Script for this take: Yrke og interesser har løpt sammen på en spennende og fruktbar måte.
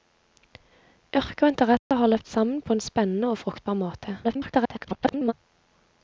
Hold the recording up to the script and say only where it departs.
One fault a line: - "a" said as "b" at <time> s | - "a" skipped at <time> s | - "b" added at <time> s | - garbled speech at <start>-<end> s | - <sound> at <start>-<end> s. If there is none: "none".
- dropout at 1.8-1.9 s
- garbled speech at 4.2-5.3 s